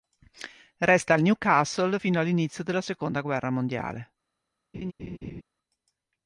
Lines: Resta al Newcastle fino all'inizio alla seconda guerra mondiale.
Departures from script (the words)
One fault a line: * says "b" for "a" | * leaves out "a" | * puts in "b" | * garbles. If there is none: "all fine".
* says "della" for "alla"